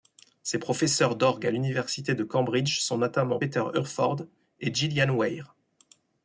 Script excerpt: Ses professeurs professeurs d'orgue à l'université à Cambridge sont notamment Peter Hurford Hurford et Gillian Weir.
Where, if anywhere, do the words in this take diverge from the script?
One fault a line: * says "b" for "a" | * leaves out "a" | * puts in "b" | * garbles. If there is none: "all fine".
* leaves out "professeurs"
* says "de" for "à"
* leaves out "Hurford"